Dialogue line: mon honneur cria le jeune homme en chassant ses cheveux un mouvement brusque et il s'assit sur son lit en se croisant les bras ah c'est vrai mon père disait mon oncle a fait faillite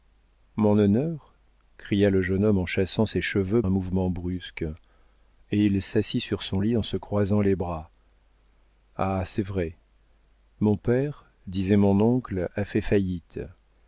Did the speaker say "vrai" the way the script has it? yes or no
yes